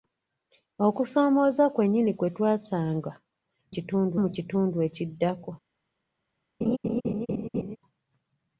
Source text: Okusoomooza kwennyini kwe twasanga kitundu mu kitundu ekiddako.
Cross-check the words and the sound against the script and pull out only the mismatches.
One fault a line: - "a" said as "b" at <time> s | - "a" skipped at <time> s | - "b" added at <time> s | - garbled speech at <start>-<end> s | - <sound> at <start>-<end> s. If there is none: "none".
- laugh at 6.6-7.8 s